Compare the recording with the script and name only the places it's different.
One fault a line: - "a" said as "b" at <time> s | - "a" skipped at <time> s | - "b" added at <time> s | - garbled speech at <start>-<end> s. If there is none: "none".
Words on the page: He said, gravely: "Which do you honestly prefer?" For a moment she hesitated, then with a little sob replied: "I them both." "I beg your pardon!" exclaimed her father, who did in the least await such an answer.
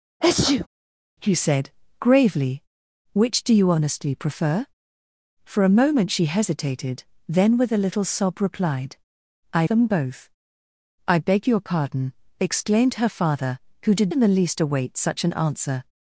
none